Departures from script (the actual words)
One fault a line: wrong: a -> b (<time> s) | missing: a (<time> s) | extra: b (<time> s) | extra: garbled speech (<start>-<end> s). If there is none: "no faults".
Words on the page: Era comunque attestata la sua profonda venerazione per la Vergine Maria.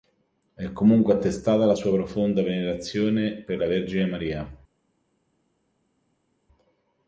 wrong: Era -> È (0.6 s)